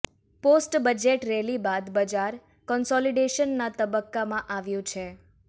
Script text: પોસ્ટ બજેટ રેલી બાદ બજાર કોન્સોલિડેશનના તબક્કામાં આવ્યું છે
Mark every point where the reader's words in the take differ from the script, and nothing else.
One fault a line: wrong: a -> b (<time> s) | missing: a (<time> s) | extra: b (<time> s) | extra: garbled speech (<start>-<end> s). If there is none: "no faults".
no faults